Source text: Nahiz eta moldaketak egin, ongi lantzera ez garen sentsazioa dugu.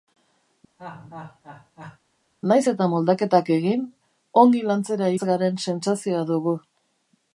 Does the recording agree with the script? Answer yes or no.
yes